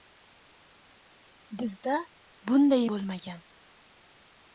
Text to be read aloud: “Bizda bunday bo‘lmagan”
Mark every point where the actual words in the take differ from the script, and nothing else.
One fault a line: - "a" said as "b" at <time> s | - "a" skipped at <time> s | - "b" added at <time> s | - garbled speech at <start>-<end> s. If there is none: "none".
none